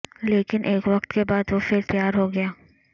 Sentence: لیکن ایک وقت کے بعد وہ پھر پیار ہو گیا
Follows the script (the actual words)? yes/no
yes